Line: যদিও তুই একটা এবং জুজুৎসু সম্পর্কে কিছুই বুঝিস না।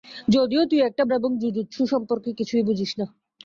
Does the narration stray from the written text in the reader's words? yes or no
no